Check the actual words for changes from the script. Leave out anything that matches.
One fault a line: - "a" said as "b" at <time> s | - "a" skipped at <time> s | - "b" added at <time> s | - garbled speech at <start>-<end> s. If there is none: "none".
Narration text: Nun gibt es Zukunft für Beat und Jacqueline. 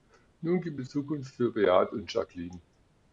none